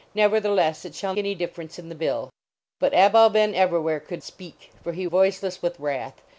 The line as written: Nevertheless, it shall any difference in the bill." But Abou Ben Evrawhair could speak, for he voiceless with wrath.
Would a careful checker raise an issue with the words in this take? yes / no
no